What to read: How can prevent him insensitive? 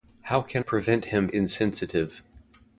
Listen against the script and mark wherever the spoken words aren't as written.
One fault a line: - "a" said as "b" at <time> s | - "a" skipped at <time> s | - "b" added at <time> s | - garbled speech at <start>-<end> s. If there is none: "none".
none